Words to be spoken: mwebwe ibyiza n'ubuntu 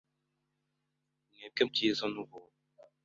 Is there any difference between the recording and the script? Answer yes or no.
no